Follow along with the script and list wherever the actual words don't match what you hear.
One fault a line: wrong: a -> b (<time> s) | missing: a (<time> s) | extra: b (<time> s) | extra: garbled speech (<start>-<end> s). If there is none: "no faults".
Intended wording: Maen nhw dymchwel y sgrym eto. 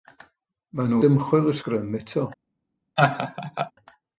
no faults